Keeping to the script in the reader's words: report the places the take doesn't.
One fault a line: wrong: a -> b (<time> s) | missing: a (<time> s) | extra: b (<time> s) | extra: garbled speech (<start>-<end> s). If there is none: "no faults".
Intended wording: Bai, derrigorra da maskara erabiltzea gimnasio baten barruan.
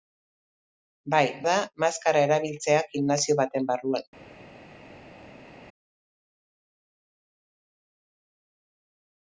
missing: derrigorra (1.2 s)